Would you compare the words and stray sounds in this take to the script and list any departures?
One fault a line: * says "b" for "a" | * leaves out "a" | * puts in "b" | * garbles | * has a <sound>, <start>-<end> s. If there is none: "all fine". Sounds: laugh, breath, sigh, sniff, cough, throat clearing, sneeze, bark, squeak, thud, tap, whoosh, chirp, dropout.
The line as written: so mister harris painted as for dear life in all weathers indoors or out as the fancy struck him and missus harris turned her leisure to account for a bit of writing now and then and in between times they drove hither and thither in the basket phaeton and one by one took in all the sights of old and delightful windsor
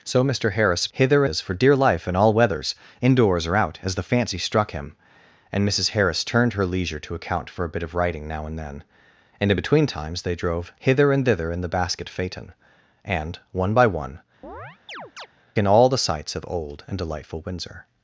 * says "hither" for "painted"
* leaves out "took"
* has a chirp, 14.4-15.3 s